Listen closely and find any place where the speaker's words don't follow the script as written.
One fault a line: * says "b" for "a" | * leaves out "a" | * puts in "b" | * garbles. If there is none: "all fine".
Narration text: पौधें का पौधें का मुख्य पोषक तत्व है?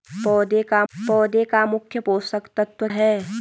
all fine